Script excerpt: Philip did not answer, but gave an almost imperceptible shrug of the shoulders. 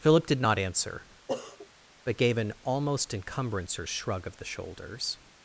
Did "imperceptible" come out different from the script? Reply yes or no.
yes